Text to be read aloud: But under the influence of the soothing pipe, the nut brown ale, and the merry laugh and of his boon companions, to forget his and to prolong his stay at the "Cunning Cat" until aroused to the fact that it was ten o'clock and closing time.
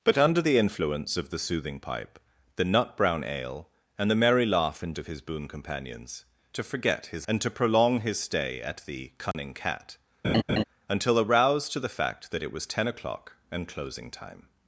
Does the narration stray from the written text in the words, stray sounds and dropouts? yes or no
yes